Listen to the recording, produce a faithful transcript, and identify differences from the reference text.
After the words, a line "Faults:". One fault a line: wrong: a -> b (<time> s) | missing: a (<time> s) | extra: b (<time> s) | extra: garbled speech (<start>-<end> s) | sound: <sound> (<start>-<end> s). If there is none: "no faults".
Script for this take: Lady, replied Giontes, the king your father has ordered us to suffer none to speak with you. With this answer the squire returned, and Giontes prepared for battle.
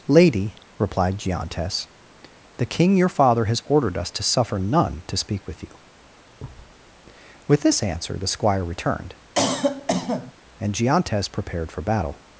Lady, replied Giontes, the king your father has ordered us to suffer none to speak with you. With this answer the squire returned, and Giontes prepared for battle.
Faults:
sound: thud (6.4-6.8 s)
sound: cough (9.4-10.3 s)